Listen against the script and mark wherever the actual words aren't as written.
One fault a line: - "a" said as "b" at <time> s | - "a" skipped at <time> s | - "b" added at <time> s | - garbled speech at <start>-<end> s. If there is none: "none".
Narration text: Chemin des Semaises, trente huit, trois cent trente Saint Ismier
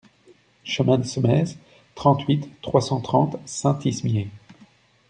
none